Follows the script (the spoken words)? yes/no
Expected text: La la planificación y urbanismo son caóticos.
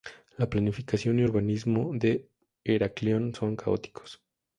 no